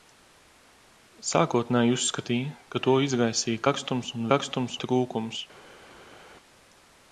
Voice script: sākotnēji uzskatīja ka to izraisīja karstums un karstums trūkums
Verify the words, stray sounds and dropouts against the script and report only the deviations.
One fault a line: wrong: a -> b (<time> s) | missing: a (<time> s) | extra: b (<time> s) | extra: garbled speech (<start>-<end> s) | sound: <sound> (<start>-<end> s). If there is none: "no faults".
no faults